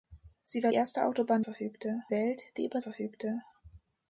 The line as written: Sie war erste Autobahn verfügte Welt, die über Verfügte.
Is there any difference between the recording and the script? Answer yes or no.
no